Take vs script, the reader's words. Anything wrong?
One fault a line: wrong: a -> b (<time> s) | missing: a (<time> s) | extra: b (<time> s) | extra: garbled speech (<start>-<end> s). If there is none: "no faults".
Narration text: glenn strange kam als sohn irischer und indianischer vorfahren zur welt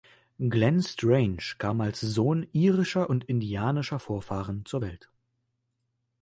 no faults